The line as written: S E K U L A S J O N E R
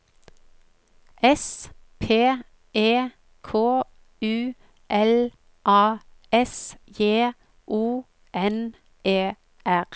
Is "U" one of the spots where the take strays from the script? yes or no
no